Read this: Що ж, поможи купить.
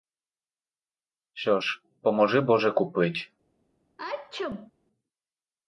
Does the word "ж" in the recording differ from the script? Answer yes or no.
no